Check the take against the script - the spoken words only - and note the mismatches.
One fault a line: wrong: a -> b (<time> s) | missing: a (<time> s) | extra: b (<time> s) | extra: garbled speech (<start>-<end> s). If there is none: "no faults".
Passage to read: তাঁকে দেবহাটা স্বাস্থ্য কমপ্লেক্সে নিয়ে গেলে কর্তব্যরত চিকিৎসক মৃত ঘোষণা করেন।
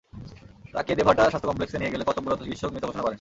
no faults